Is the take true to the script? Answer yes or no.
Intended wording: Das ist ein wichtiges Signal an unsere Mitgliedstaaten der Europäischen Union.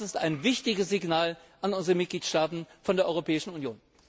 yes